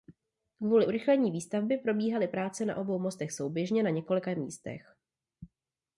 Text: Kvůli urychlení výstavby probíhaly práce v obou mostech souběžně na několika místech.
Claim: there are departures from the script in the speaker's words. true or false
true